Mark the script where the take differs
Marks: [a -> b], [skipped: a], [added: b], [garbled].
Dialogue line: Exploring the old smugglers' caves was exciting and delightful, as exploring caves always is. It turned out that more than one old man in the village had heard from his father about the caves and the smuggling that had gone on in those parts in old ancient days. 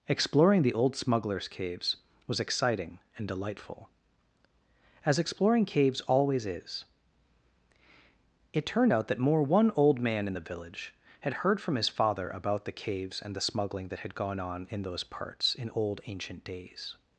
Exploring the old smugglers' caves was exciting and delightful, as exploring caves always is. It turned out that more [skipped: than] one old man in the village had heard from his father about the caves and the smuggling that had gone on in those parts in old ancient days.